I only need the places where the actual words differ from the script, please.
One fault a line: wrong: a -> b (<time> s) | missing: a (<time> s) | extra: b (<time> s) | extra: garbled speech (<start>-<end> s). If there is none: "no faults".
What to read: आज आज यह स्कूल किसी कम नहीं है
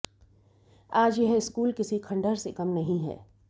missing: आज (1.2 s)
extra: खंडहर से (2.0 s)